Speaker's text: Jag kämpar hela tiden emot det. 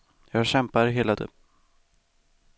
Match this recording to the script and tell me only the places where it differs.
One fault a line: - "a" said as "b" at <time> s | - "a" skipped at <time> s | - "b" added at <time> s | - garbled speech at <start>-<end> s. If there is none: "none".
- "tiden emot" skipped at 1.1 s